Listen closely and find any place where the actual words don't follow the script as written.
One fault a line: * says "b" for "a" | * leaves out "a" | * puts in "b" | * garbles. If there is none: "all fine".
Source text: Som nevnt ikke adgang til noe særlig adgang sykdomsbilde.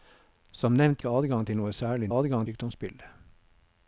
all fine